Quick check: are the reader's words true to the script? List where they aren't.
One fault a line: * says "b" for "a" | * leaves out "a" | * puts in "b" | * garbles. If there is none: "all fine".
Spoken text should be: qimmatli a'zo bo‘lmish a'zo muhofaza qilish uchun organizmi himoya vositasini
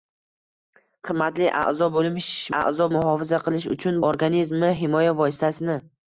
all fine